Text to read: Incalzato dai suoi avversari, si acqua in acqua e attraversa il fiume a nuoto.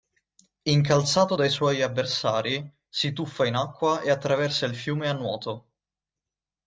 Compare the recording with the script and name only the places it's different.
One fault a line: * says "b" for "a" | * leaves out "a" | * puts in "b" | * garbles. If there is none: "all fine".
* says "tuffa" for "acqua"